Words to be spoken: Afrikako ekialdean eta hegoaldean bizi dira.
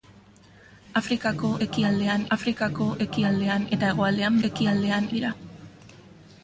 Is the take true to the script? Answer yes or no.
no